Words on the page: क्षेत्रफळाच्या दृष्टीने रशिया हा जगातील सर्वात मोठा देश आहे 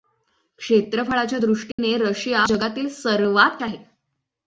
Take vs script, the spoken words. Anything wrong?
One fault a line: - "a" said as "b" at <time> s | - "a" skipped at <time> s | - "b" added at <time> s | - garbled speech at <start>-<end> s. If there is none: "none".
- "हा" skipped at 2.4 s
- "मोठा देश" skipped at 3.6 s